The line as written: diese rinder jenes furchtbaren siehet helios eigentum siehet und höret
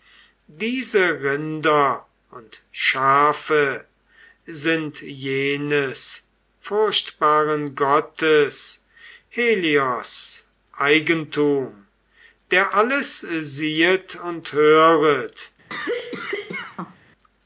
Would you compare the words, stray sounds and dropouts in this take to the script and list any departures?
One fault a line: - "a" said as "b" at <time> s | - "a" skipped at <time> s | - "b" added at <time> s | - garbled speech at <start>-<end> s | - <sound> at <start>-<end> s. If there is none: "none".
- "und schafe sind" added at 2.3 s
- "siehet" said as "gottes" at 7.8 s
- "der alles" added at 12.5 s
- cough at 15.7-17.0 s